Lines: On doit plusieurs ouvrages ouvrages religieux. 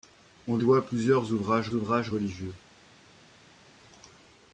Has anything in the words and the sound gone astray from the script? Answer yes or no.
no